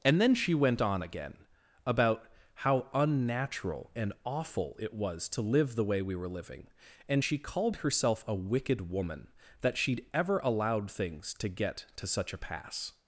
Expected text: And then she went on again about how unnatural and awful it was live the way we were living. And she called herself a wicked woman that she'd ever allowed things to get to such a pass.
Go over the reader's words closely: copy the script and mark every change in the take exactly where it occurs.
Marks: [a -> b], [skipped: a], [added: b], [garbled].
And then she went on again about how unnatural and awful it was [added: to] live the way we were living. And she called herself a wicked woman that she'd ever allowed things to get to such a pass.